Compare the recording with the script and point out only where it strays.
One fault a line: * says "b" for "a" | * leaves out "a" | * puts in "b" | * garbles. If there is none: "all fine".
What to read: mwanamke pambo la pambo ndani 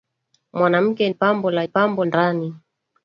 all fine